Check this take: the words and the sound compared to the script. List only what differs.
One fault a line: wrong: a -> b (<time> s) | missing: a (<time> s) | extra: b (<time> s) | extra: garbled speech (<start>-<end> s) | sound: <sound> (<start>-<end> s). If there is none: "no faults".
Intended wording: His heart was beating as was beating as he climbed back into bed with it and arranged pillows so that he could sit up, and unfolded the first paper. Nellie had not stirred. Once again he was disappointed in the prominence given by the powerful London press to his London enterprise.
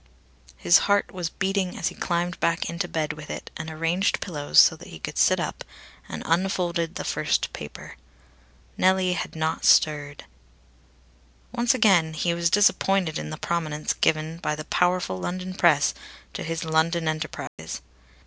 missing: was beating as (1.9 s)
sound: dropout (17.5-17.6 s)